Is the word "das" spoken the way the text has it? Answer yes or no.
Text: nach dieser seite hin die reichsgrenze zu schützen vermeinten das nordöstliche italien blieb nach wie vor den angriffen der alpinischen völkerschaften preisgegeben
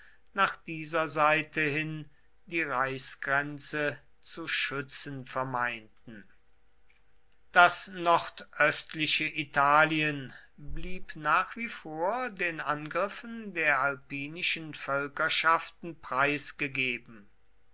yes